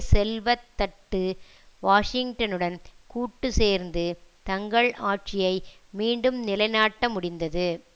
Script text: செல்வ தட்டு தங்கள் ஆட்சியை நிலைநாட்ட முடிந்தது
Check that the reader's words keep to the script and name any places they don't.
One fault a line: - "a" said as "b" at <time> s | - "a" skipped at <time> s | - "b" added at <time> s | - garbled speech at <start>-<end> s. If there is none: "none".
- "வாஷிங்டனுடன் கூட்டு சேர்ந்து" added at 1.8 s
- "மீண்டும்" added at 5.9 s